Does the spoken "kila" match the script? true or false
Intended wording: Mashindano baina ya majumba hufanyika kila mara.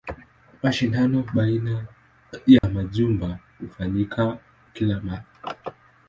true